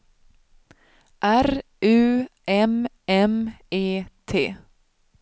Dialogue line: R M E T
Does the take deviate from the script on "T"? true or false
false